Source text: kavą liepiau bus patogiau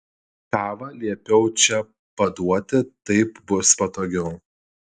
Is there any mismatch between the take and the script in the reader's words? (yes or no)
yes